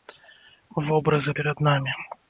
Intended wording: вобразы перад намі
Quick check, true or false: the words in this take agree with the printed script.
true